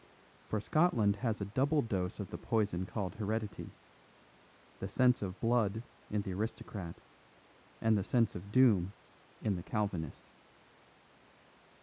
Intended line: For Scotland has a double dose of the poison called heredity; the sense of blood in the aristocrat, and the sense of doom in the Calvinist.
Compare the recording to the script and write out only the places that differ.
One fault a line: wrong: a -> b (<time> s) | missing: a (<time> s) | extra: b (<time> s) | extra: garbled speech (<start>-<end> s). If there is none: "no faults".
no faults